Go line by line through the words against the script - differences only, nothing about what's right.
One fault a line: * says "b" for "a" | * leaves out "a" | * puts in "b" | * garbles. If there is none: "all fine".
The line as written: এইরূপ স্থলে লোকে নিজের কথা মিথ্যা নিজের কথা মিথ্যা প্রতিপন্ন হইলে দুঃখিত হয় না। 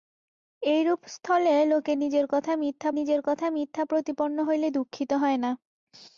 all fine